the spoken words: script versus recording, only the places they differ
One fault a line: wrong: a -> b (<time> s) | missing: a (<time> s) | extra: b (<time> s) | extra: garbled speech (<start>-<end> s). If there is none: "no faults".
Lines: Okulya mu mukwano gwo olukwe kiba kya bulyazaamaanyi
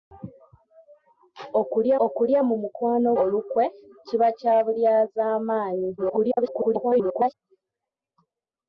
extra: okulya (2.0 s)
missing: gwo (3.1 s)
extra: garbled speech (6.0-7.3 s)